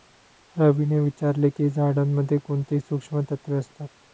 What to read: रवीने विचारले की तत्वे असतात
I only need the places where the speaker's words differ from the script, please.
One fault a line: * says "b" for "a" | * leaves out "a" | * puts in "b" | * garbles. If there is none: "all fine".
* puts in "झाडांमध्ये कोणती सूक्ष्म"